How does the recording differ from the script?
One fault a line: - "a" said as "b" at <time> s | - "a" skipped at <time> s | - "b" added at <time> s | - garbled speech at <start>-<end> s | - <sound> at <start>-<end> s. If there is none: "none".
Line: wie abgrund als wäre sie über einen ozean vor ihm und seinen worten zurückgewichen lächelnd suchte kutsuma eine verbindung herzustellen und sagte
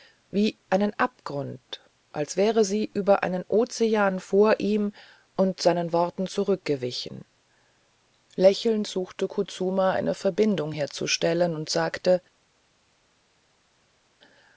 - "einen" added at 0.7 s